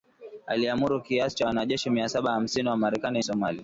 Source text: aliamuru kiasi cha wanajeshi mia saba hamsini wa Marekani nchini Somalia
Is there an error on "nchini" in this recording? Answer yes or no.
yes